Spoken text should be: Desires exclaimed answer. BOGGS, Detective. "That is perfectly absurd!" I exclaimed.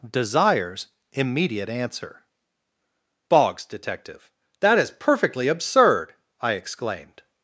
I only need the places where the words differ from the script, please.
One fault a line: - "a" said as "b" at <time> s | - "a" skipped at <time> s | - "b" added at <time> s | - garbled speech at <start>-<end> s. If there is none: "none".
- "exclaimed" said as "immediate" at 1.1 s